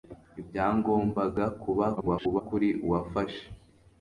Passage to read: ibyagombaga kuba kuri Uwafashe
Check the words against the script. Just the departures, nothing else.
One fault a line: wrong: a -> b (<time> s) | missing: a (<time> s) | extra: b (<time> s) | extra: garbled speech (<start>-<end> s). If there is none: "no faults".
extra: garbled speech (2.0-2.4 s)